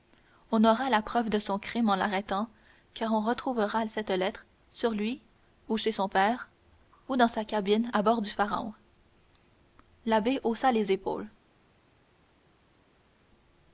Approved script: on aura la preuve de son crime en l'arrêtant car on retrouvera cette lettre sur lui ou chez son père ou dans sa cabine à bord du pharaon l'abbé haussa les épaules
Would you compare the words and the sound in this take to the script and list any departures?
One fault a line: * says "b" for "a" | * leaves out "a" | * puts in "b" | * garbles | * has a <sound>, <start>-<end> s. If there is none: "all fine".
all fine